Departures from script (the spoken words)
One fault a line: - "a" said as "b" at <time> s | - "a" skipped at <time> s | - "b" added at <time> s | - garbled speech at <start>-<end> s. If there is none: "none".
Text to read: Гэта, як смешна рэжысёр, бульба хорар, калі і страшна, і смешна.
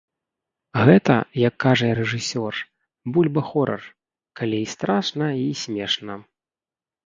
- "смешна" said as "кажа" at 1.6 s